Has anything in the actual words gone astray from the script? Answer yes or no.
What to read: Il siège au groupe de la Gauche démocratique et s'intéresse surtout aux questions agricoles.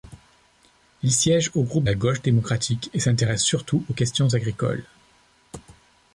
yes